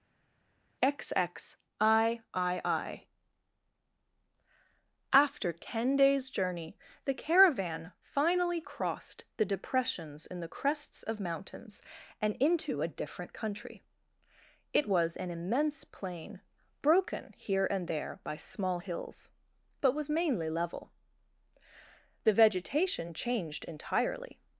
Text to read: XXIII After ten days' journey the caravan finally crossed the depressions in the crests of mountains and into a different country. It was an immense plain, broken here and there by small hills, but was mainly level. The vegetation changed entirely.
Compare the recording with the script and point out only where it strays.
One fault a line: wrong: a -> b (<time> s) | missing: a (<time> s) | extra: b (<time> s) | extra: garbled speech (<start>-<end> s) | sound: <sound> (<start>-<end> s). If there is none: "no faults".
no faults